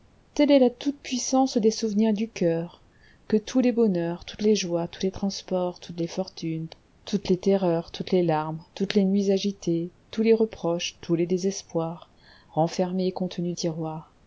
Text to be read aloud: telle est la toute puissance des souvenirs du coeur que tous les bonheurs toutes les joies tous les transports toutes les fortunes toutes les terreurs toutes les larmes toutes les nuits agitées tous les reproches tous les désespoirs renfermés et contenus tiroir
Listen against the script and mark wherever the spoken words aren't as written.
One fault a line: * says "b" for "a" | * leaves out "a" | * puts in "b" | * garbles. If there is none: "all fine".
all fine